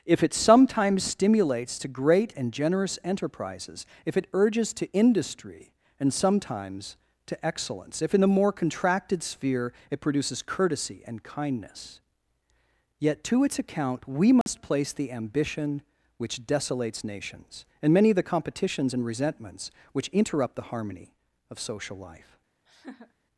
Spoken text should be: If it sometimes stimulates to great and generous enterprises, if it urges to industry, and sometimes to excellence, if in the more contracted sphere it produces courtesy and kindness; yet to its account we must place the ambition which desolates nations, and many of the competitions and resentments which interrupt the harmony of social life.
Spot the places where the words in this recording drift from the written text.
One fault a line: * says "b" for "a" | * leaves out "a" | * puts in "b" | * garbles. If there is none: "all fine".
all fine